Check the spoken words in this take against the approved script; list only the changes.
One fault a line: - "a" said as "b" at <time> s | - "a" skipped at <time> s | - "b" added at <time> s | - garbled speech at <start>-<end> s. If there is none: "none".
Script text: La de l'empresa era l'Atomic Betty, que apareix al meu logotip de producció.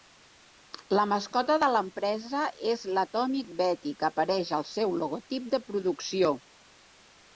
- "mascota" added at 1.1 s
- "era" said as "és" at 2.7 s
- "meu" said as "seu" at 4.7 s